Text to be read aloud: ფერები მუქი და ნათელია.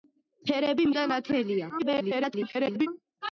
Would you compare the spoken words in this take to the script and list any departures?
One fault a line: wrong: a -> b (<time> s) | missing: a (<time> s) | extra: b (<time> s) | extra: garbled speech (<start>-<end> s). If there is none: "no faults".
missing: მუქი (0.9 s)
extra: garbled speech (1.8-2.9 s)